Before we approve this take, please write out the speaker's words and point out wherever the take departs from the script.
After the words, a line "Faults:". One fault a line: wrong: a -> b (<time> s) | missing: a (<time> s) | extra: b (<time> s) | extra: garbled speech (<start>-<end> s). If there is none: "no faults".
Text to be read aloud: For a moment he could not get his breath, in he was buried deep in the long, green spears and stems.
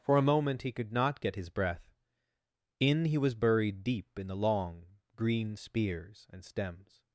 For a moment he could not get his breath, in he was buried deep in the long, green spears and stems.
Faults:
no faults